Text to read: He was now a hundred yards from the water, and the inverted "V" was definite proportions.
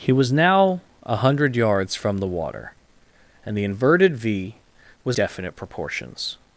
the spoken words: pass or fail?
pass